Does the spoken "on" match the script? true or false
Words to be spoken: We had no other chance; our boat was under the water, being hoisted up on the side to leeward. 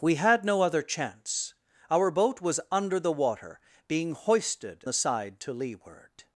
false